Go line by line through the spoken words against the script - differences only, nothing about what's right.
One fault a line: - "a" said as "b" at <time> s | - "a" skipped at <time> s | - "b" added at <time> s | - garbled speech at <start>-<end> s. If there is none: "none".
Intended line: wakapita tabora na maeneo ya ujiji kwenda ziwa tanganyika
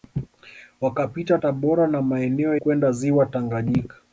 - "ya ujiji" skipped at 2.6 s